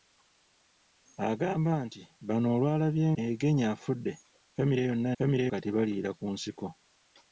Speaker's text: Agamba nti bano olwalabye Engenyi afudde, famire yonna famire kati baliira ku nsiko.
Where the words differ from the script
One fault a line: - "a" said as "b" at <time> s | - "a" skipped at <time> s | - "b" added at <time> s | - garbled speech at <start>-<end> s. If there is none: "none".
none